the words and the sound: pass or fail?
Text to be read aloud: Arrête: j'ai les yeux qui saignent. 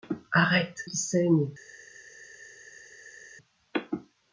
fail